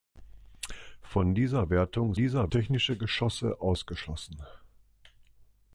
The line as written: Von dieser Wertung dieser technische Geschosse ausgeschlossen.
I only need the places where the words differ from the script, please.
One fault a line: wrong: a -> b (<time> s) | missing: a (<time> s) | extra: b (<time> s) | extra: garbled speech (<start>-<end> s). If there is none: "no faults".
no faults